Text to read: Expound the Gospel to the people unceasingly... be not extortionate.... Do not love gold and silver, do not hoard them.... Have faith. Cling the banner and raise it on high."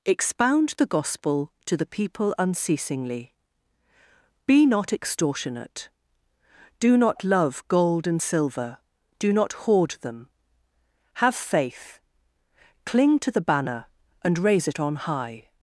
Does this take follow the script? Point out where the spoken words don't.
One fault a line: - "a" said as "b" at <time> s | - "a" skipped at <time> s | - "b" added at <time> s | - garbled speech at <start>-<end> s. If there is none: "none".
- "to" added at 13.2 s